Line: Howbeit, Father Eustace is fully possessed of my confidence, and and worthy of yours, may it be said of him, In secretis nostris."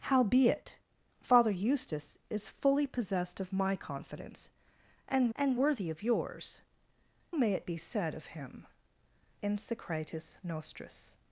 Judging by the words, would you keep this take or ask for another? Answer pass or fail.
pass